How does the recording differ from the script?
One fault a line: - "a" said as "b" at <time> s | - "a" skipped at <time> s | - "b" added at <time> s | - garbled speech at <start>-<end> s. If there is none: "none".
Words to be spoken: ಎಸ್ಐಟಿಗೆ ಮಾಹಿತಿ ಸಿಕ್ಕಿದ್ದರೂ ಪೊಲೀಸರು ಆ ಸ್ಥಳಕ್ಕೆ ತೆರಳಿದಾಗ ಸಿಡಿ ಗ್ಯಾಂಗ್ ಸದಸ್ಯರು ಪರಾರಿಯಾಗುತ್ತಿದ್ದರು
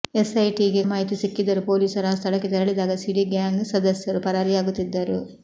none